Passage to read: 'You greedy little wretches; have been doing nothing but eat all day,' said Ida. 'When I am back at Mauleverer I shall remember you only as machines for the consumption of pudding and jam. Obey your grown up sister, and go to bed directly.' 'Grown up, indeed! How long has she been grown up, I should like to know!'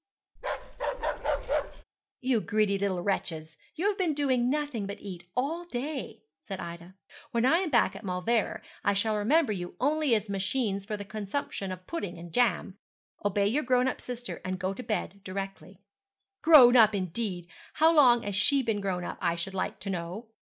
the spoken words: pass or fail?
fail